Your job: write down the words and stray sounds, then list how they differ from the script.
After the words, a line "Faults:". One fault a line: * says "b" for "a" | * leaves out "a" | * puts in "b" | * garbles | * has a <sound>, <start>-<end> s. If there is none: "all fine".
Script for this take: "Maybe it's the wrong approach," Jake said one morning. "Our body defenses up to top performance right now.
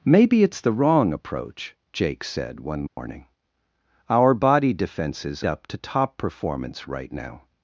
"Maybe it's the wrong approach," Jake said one morning. "Our body defenses up to top performance right now.
Faults:
* has a dropout, 2.9-3.0 s